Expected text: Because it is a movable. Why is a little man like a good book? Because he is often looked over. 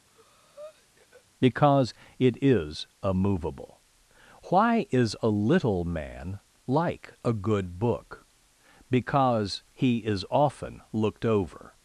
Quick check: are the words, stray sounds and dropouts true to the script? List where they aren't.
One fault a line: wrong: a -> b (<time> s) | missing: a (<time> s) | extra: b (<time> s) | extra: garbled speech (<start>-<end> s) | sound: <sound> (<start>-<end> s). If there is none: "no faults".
sound: breath (0.1-1.2 s)